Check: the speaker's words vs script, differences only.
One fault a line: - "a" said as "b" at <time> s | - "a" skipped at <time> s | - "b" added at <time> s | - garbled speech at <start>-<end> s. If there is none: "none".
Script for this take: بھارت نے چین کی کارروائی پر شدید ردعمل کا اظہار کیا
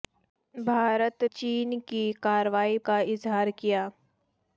- "نے" skipped at 1.2 s
- "پر شدید ردعمل" skipped at 2.8 s